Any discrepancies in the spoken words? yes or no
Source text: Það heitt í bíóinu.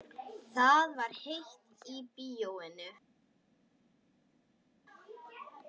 yes